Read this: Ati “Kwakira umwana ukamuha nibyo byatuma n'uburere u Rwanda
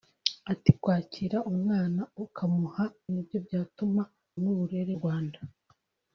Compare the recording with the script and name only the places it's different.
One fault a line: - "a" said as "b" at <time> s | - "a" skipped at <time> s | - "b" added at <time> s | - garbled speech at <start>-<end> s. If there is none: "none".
none